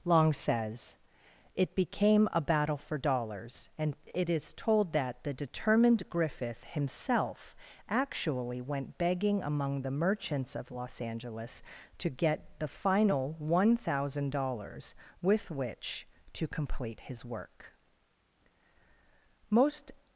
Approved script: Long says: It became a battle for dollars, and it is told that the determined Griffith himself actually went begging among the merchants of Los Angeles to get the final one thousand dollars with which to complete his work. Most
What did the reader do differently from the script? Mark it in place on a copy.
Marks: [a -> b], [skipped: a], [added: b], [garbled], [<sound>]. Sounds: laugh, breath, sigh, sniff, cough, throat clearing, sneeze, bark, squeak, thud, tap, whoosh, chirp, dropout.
Long says: It became a battle for dollars, and it is told that the determined Griffith himself actually went begging among the merchants of Los Angeles to get the final one thousand dollars with which to complete his work. Most